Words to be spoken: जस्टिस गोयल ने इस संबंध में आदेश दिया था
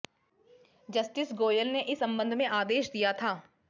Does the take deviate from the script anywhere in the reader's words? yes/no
no